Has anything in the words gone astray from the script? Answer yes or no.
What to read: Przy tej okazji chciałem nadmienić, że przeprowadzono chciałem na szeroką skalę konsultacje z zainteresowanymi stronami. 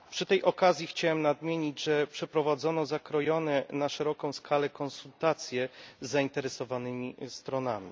yes